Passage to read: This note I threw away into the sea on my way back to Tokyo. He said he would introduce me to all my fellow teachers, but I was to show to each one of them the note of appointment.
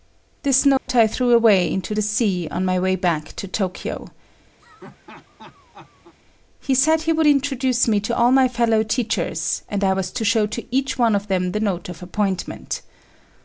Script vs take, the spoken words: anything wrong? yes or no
yes